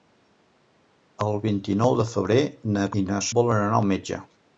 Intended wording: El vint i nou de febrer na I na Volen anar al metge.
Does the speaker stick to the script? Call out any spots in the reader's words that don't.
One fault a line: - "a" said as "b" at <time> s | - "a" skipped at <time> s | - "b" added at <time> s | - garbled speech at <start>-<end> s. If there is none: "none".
none